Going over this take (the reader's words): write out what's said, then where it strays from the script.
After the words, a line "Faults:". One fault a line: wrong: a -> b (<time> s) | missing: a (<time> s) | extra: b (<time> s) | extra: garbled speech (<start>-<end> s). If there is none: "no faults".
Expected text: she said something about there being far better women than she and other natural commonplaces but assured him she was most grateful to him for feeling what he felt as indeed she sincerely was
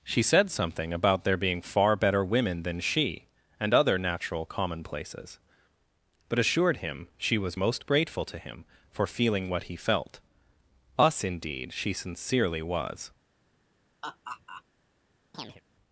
she said something about there being far better women than she and other natural commonplaces but assured him she was most grateful to him for feeling what he felt us indeed she sincerely was
Faults:
wrong: as -> us (11.0 s)